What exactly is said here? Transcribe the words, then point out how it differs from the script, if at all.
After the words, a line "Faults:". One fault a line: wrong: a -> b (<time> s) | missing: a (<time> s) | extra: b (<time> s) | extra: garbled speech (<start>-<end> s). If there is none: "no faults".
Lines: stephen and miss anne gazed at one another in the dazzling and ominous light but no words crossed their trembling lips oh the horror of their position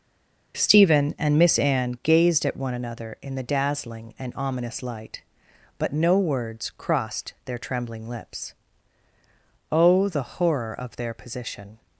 stephen and miss anne gazed at one another in the dazzling and ominous light but no words crossed their trembling lips oh the horror of their position
Faults:
no faults